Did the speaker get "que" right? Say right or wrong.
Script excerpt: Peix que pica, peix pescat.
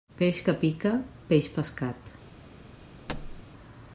right